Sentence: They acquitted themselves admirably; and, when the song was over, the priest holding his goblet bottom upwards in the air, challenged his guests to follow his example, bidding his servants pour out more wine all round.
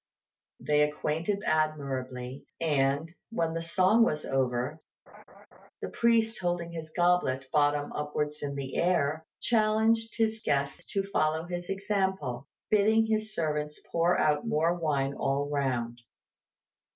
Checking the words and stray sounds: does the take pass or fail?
fail